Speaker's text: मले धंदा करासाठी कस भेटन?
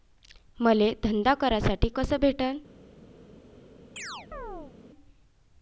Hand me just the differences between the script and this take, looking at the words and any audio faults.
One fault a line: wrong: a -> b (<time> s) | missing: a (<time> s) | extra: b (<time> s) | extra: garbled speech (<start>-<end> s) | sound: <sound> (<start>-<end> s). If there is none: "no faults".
sound: chirp (4.0-4.8 s)